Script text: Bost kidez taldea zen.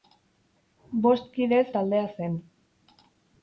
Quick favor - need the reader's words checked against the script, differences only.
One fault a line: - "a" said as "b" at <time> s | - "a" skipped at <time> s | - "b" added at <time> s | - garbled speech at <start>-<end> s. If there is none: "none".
none